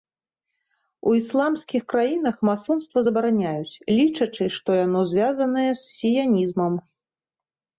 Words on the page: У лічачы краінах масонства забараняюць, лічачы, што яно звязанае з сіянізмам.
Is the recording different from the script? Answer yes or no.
yes